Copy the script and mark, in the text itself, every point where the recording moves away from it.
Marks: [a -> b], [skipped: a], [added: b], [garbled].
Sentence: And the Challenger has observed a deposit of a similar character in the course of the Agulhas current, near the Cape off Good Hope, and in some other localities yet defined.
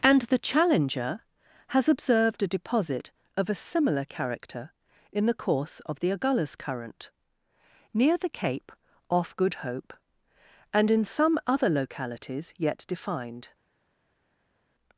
And the Challenger has observed a deposit of a similar character in the course of the Agulhas current, near the Cape off Good Hope, and in some other localities yet defined.